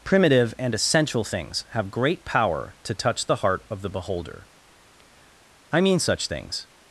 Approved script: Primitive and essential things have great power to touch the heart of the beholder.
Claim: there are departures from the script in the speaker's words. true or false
true